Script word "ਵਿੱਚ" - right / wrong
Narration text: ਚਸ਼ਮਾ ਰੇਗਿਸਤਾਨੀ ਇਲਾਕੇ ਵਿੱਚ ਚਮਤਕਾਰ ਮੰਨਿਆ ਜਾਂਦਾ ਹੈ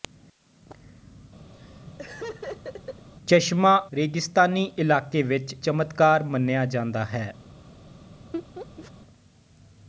right